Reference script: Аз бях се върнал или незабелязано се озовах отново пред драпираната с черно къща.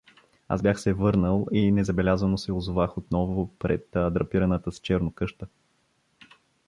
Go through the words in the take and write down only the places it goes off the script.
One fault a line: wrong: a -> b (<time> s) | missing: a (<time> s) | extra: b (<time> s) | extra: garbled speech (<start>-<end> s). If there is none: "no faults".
wrong: или -> и (1.5 s)